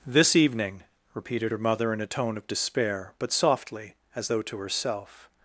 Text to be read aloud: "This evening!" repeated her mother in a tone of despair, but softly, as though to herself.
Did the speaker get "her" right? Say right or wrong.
right